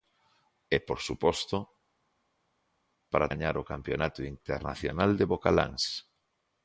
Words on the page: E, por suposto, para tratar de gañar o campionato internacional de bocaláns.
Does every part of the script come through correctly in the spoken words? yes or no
no